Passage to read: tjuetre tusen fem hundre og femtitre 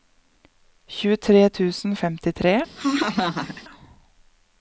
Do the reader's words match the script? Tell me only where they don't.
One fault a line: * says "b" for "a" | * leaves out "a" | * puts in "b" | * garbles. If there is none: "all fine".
* leaves out "fem hundre"